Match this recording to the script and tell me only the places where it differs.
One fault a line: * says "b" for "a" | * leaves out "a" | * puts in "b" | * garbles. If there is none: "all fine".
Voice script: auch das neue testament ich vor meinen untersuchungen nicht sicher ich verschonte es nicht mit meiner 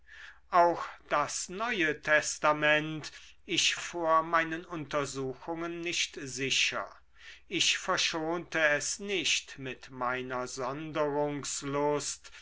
all fine